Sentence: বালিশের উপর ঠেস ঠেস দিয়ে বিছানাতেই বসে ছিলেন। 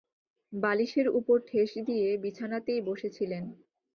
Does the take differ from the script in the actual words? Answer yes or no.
yes